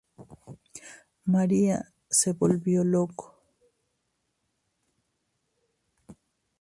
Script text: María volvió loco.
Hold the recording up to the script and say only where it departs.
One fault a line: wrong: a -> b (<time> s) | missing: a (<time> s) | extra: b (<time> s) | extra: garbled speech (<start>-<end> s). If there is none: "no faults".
extra: se (2.1 s)